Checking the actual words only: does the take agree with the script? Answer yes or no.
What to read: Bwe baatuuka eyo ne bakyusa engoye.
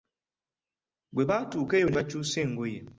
yes